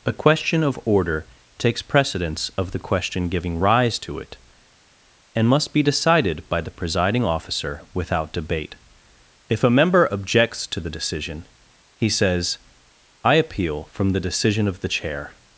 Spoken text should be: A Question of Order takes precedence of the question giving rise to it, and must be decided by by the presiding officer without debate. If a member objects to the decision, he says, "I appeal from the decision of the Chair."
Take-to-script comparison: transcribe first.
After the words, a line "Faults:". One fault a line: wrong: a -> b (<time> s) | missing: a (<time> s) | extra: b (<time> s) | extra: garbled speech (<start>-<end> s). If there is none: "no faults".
A Question of Order takes precedence of the question giving rise to it, and must be decided by the presiding officer without debate. If a member objects to the decision, he says, "I appeal from the decision of the Chair."
Faults:
missing: by (6.6 s)